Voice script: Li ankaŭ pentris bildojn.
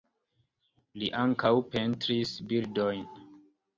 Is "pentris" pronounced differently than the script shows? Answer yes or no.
no